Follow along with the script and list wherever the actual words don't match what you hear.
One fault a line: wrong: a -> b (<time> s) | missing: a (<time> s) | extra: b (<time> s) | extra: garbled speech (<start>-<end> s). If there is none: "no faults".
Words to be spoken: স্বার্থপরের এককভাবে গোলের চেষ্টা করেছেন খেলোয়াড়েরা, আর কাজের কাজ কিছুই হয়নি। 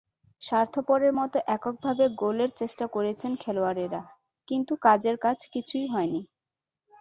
extra: মতো (1.2 s)
wrong: আর -> কিন্তু (4.5 s)